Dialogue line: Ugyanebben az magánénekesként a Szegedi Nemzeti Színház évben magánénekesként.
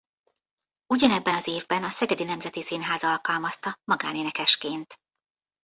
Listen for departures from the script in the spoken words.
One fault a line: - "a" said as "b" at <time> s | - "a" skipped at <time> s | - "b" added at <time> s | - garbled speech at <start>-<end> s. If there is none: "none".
- "magánénekesként" said as "évben" at 1.5 s
- "évben" said as "alkalmazta" at 3.0 s